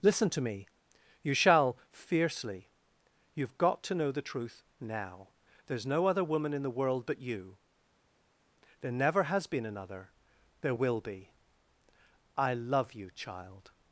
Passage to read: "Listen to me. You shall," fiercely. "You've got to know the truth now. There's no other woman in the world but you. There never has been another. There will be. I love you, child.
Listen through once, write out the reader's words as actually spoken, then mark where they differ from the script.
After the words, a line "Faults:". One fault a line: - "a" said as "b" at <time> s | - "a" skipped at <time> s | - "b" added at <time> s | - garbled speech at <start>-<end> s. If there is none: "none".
"Listen to me. You shall," fiercely. "You've got to know the truth now. There's no other woman in the world but you. There never has been another. There will be. I love you, child.
Faults:
none